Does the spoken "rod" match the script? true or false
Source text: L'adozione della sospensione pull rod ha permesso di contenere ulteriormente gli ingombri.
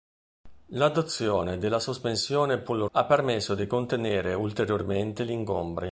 false